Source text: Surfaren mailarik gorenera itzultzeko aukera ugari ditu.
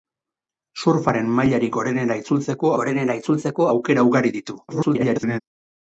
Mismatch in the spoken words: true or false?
true